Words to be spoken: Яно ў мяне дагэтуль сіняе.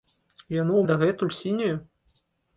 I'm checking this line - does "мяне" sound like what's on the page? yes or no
no